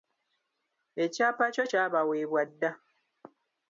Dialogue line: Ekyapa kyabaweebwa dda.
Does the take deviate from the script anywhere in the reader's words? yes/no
yes